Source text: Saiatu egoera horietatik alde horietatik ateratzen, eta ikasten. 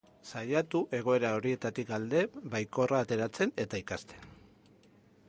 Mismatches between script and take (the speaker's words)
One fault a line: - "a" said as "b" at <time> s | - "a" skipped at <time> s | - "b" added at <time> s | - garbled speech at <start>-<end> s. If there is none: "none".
- "horietatik" said as "baikorra" at 2.5 s